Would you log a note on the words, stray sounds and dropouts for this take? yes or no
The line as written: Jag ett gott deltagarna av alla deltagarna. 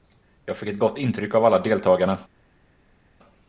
yes